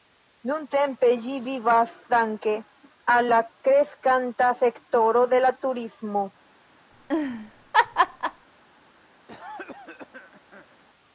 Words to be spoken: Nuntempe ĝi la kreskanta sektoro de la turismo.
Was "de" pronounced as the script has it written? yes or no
yes